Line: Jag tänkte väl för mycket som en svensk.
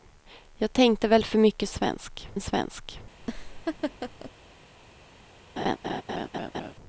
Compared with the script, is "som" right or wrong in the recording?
wrong